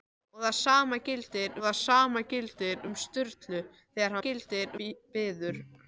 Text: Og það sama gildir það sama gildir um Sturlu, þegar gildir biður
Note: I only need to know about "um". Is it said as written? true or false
true